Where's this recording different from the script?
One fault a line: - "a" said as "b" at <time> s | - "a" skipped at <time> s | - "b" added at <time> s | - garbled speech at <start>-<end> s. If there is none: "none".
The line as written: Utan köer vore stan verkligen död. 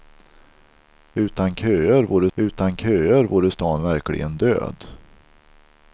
- "utan köer vore" added at 2.3 s